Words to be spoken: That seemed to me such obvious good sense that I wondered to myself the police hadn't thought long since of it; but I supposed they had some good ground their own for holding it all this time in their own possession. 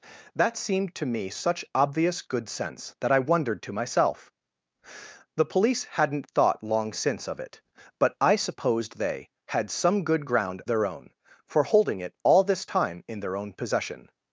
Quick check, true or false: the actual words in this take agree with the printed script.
true